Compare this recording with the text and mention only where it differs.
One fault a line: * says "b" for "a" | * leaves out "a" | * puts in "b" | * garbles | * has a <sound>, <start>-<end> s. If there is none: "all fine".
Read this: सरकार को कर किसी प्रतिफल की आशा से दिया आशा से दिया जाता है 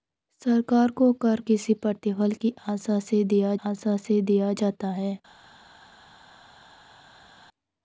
all fine